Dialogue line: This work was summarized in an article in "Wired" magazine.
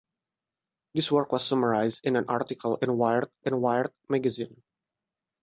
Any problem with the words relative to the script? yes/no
yes